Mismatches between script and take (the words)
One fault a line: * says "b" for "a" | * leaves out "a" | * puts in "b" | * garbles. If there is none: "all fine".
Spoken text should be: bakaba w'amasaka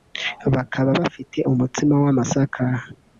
* puts in "bafite umutsima"